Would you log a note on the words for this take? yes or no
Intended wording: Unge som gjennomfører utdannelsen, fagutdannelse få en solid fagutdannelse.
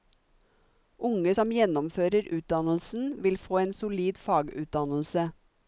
yes